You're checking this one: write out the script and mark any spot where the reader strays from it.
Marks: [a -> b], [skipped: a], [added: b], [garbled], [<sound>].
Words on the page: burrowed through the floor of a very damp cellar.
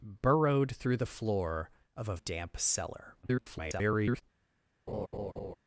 burrowed through the floor of a [skipped: very] damp cellar. [garbled] [laugh]